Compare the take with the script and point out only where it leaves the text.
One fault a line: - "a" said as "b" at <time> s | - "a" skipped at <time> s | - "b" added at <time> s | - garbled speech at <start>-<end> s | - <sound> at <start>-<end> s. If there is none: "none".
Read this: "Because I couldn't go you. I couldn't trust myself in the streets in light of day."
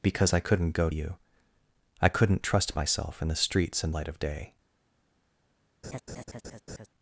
- laugh at 5.8-6.9 s